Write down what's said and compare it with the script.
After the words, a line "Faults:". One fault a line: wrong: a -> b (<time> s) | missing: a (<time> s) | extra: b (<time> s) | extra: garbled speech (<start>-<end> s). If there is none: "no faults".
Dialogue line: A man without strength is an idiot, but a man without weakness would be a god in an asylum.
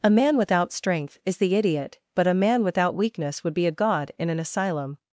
A man without strength is the idiot, but a man without weakness would be a god in an asylum.
Faults:
wrong: an -> the (1.4 s)